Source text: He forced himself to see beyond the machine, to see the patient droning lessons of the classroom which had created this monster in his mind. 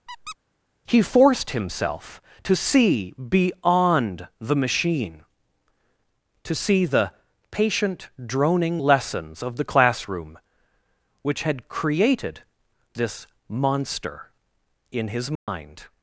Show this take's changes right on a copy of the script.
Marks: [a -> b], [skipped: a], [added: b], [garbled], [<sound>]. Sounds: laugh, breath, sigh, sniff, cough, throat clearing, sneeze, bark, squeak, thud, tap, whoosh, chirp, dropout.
[squeak] He forced himself to see beyond the machine, to see the patient droning lessons of the classroom which had created this monster in his mind. [dropout]